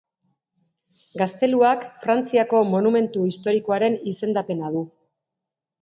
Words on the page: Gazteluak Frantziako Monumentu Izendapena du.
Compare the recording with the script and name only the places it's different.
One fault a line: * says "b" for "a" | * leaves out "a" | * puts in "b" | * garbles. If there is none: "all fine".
* puts in "Historikoaren"